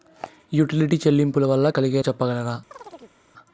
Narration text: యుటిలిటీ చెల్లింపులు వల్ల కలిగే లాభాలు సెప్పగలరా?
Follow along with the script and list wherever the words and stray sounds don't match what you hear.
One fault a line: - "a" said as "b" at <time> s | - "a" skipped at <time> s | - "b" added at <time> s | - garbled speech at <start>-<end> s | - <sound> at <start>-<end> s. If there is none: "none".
- "లాభాలు" skipped at 2.0 s
- chirp at 2.7-3.2 s